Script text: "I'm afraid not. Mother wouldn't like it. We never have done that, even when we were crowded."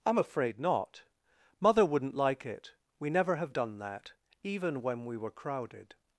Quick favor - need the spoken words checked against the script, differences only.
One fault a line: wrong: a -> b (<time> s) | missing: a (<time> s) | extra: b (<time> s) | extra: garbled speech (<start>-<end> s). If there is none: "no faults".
no faults